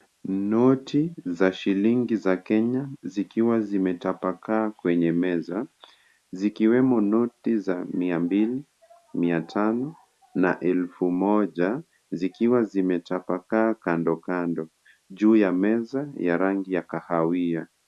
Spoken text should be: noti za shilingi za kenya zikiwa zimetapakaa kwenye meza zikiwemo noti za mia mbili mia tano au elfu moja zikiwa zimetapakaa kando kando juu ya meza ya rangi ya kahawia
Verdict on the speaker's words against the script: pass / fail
fail